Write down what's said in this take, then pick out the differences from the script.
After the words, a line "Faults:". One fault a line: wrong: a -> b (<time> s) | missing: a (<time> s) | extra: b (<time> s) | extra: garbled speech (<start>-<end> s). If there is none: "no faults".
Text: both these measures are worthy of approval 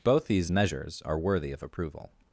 both these measures are worthy of approval
Faults:
no faults